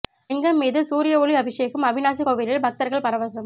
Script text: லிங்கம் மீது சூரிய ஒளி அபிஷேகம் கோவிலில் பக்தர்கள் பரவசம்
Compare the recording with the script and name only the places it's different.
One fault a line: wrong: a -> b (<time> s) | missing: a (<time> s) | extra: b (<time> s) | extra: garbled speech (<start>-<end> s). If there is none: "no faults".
extra: அவிநாசி (1.9 s)